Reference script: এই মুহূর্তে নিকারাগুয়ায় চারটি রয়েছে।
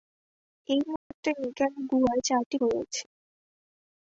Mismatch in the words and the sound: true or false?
true